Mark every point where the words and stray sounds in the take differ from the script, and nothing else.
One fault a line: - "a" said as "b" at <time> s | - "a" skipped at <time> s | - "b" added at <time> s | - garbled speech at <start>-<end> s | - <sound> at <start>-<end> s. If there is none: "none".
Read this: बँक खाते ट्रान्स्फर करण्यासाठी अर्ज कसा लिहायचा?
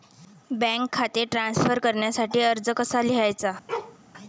- bark at 3.7-4.0 s